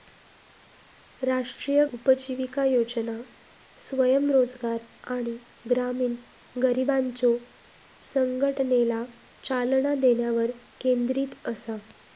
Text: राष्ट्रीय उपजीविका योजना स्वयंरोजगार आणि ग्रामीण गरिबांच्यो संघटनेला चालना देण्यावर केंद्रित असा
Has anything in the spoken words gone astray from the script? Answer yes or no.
no